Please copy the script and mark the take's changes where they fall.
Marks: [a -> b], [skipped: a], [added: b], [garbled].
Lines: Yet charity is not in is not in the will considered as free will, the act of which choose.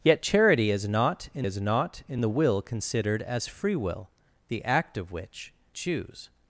Yet charity is not in is not in the will considered as free will, the act of which choose.